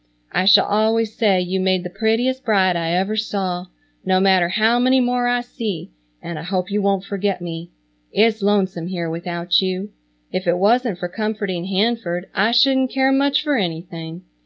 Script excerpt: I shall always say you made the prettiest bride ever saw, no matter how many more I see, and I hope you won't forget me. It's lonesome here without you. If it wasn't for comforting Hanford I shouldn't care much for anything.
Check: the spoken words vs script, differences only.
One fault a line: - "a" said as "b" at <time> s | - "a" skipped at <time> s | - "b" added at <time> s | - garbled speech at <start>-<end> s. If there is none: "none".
- "I" added at 2.8 s